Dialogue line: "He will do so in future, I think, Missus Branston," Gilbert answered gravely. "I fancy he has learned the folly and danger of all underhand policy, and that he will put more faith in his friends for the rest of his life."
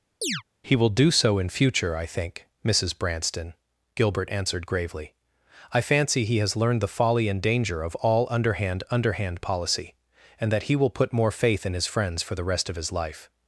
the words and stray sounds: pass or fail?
fail